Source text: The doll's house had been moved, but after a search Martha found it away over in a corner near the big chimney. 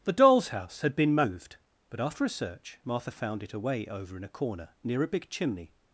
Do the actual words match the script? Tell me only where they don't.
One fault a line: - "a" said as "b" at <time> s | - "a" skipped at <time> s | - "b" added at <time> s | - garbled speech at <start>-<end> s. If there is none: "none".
- "the" said as "a" at 5.0 s